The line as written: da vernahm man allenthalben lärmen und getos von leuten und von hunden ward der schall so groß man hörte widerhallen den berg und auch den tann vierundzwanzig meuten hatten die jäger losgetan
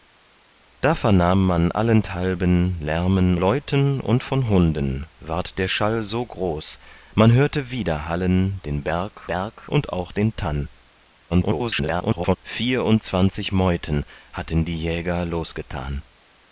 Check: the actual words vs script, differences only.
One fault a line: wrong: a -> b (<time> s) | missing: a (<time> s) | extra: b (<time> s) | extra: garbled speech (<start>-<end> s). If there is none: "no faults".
missing: und getos von (3.4 s)
extra: berg (9.2 s)
extra: garbled speech (11.3-12.4 s)